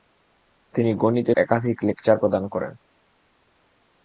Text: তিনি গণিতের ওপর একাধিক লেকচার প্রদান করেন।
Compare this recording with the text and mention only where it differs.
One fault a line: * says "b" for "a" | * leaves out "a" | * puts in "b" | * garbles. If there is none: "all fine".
* leaves out "ওপর"